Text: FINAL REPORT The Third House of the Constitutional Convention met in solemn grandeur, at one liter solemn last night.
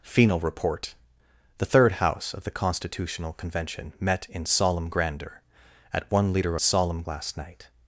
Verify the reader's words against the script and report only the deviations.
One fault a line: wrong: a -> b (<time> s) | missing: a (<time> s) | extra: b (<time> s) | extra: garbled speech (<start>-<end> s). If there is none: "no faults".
no faults